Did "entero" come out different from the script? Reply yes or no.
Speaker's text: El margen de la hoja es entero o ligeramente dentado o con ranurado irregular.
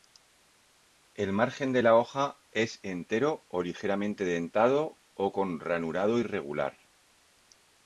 no